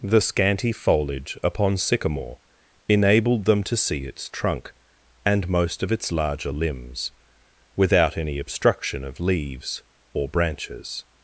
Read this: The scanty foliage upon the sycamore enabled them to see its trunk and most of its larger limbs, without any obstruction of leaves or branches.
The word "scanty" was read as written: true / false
true